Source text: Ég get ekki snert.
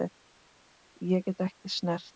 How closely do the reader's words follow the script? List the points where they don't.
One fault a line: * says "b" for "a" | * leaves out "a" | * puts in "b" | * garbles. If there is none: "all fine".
all fine